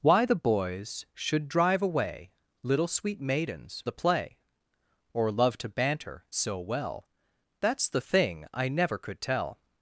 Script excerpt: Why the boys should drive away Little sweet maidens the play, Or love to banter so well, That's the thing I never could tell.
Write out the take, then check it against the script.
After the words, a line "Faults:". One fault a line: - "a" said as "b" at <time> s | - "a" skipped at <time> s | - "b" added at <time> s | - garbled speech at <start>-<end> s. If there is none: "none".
Why the boys should drive away Little sweet maidens the play, Or love to banter so well, That's the thing I never could tell.
Faults:
none